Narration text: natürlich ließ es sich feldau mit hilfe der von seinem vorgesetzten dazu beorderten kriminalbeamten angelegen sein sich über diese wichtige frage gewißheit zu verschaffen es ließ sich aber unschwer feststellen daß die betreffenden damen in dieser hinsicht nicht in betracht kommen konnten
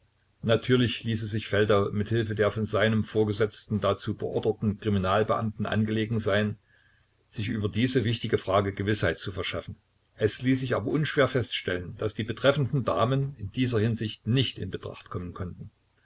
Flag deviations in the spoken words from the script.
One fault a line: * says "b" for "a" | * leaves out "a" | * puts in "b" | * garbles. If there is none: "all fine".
all fine